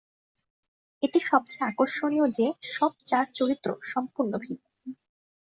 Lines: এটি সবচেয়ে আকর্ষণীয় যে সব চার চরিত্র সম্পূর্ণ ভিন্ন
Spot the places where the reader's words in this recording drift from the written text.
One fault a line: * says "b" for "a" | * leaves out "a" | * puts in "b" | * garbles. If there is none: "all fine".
all fine